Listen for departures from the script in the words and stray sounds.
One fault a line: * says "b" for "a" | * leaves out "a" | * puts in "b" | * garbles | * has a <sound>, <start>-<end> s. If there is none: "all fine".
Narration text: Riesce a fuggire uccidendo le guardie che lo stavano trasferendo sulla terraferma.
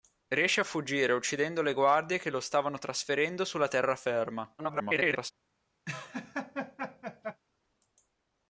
* garbles
* has a laugh, 5.9-7.4 s